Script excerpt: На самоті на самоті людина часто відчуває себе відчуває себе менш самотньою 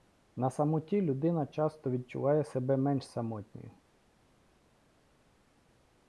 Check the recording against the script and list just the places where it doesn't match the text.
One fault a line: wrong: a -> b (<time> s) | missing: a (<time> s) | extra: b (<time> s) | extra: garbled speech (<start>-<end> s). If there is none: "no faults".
missing: на самоті (1.0 s)
missing: відчуває себе (2.8 s)